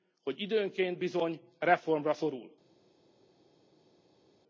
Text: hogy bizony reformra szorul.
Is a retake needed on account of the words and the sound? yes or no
yes